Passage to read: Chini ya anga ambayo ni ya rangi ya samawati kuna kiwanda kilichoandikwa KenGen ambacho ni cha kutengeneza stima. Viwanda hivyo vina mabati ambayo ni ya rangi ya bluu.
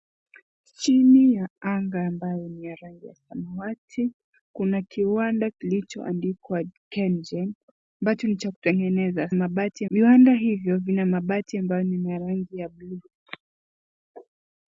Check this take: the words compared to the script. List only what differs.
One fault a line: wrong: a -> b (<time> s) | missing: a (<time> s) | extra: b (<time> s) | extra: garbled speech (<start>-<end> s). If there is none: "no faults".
wrong: stima -> mabati (9.3 s)